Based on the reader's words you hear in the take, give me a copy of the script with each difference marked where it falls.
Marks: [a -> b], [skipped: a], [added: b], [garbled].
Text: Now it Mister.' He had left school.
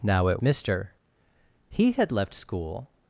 Now it Mister.' He had left school.